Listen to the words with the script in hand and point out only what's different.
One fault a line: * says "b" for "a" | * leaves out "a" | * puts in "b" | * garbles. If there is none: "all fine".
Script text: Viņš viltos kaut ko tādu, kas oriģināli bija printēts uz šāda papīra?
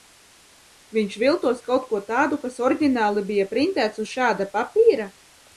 all fine